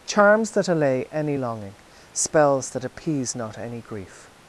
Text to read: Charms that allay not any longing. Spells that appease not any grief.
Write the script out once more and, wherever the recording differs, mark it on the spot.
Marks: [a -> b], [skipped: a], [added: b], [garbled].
Charms that allay [skipped: not] any longing. Spells that appease not any grief.